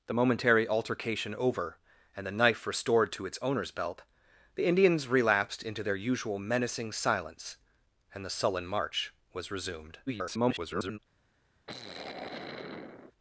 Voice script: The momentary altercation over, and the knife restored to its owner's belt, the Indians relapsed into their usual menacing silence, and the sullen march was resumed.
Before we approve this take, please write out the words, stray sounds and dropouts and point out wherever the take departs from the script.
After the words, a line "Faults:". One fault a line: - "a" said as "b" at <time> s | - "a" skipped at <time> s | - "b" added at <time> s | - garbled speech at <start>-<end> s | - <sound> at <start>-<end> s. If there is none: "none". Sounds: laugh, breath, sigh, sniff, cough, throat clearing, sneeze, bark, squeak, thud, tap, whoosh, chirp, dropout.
The momentary altercation over, and the knife restored to its owner's belt, the Indians relapsed into their usual menacing silence, and the sullen march was resumed. [garbled]
Faults:
- garbled speech at 10.1-11.0 s
- sigh at 11.7-13.1 s